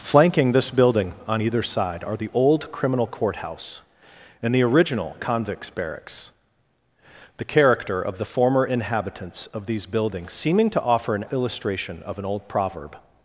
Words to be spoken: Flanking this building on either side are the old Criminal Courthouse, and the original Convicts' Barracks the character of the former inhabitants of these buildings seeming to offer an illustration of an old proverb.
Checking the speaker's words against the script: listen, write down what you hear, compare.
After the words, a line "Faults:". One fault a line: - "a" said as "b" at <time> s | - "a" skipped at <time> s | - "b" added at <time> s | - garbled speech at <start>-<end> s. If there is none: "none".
Flanking this building on either side are the old Criminal Courthouse, and the original Convicts' Barracks the character of the former inhabitants of these buildings seeming to offer an illustration of an old proverb.
Faults:
none